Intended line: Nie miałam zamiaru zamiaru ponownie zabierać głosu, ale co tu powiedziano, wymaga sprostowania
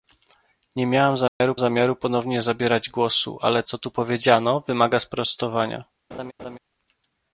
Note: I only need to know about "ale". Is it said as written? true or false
true